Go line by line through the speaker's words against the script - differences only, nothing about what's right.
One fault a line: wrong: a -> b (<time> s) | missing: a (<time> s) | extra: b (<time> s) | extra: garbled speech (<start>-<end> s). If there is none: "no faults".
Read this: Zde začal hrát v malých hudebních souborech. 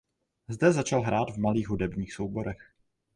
no faults